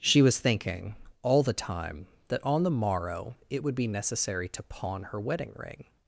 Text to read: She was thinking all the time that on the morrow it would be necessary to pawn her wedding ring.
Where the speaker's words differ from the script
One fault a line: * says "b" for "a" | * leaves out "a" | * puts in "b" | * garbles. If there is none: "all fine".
all fine